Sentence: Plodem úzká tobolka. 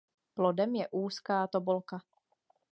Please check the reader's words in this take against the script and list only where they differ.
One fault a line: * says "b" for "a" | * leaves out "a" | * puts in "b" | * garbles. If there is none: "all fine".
* puts in "je"